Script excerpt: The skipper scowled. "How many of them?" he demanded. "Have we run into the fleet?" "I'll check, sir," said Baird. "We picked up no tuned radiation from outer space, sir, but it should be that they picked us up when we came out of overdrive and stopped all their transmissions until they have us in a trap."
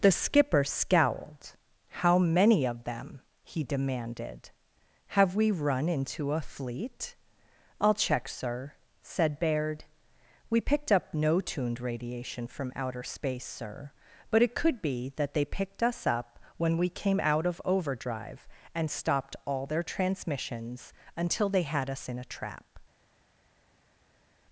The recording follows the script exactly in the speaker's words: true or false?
false